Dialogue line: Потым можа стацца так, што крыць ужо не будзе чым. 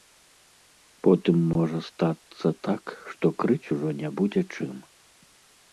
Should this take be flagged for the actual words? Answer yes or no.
no